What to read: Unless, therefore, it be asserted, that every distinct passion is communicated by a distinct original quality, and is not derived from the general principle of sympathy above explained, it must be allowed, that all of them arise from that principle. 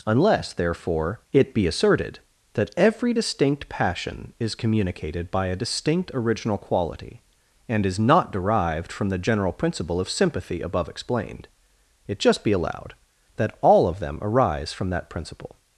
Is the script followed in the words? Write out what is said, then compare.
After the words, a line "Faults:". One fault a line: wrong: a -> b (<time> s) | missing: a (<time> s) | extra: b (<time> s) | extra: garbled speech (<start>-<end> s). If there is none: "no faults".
Unless, therefore, it be asserted, that every distinct passion is communicated by a distinct original quality, and is not derived from the general principle of sympathy above explained, it just be allowed, that all of them arise from that principle.
Faults:
wrong: must -> just (12.2 s)